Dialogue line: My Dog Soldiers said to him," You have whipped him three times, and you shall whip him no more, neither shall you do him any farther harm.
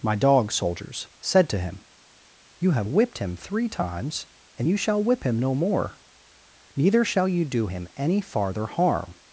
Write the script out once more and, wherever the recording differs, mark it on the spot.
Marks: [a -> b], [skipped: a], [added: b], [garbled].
My Dog Soldiers said to him," You have whipped him three times, and you shall whip him no more, neither shall you do him any farther harm.